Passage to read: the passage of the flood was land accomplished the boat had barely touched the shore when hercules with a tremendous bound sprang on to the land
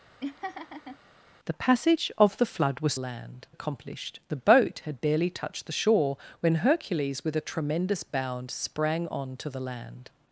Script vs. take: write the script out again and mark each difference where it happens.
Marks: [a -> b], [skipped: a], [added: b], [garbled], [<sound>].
[laugh] the passage of the flood was land accomplished the boat had barely touched the shore when hercules with a tremendous bound sprang on to the land